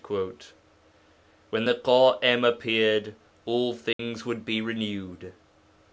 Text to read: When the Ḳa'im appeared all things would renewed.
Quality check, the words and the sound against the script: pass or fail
fail